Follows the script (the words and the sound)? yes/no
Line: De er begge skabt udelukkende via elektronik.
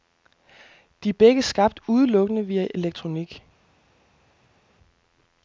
yes